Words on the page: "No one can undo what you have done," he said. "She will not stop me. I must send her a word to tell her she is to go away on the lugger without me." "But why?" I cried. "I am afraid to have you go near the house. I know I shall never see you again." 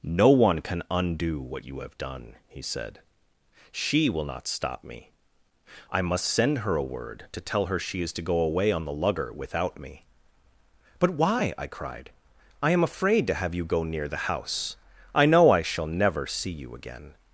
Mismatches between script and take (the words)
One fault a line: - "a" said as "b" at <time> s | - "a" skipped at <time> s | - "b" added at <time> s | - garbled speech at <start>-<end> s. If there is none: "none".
none